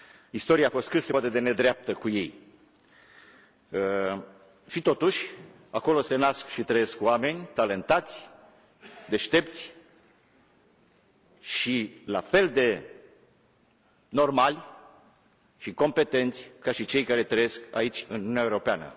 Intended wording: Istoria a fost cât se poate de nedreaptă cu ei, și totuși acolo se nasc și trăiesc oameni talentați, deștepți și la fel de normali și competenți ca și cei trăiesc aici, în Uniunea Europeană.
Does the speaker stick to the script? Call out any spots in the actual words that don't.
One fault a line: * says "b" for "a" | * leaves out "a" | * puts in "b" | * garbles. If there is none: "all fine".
* puts in "care"